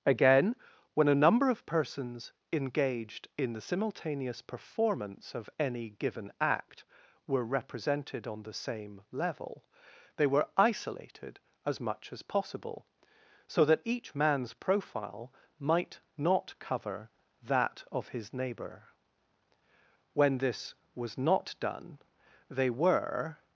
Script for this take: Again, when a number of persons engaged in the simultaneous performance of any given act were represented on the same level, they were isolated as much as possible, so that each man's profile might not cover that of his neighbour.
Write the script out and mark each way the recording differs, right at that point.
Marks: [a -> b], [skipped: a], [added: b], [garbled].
Again, when a number of persons engaged in the simultaneous performance of any given act were represented on the same level, they were isolated as much as possible, so that each man's profile might not cover that of his neighbour. [added: When this was not done they were]